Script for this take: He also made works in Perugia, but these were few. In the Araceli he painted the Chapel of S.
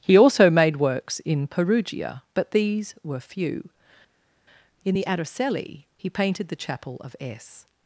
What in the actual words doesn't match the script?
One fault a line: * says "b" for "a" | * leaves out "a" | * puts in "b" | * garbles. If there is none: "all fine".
all fine